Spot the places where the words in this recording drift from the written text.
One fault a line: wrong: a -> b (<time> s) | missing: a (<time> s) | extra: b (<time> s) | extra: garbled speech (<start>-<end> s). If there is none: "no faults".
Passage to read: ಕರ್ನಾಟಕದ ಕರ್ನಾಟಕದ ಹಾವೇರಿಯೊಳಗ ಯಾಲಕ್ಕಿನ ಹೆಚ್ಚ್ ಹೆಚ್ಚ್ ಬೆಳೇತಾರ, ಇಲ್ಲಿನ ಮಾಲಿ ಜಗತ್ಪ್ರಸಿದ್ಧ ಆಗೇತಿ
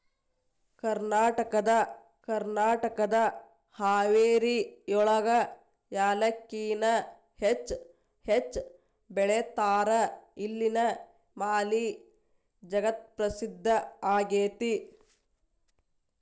no faults